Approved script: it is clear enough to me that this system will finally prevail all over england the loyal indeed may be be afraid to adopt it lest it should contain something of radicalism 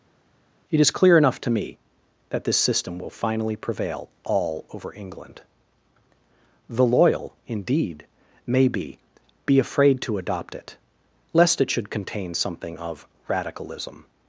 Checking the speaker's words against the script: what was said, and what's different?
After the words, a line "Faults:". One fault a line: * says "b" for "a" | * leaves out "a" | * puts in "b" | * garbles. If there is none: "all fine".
it is clear enough to me that this system will finally prevail all over england the loyal indeed may be be afraid to adopt it lest it should contain something of radicalism
Faults:
all fine